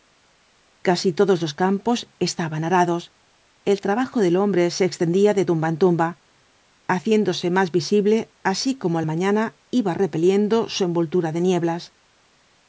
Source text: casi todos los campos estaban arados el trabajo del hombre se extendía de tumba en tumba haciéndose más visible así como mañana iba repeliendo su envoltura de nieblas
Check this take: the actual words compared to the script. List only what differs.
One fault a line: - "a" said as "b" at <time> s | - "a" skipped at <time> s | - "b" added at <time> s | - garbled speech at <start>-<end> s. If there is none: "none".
none